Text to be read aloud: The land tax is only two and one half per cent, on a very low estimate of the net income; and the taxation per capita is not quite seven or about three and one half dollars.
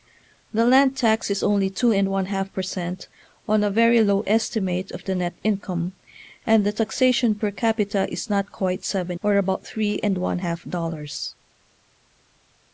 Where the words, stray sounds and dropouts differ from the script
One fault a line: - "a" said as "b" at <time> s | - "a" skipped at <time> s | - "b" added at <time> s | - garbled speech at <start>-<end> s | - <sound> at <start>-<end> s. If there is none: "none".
none